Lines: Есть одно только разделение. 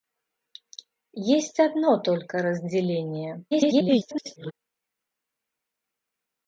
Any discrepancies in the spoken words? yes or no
yes